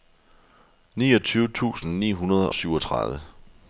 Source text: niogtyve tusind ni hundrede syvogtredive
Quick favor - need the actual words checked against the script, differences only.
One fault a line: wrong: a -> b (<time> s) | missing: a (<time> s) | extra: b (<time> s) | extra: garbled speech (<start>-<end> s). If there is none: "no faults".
no faults